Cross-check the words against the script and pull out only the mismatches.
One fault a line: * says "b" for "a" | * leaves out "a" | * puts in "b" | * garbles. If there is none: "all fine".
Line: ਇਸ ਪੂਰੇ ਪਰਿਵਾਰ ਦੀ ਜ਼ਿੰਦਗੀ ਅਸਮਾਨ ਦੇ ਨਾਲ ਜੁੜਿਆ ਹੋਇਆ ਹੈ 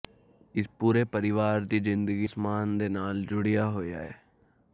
all fine